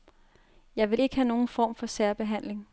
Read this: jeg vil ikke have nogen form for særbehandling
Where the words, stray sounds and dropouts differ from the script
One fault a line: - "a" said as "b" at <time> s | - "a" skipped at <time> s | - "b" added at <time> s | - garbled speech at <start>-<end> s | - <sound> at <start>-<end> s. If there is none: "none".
none